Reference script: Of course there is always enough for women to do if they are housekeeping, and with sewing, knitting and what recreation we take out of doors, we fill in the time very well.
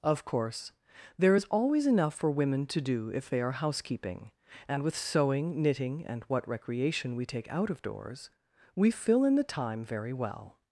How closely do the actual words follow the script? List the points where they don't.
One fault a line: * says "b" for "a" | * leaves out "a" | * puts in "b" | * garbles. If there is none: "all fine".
all fine